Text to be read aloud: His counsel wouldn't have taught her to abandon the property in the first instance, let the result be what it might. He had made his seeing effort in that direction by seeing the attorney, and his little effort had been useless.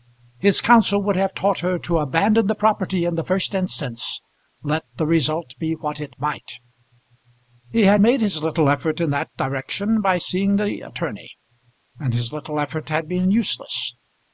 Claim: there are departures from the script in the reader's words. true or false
true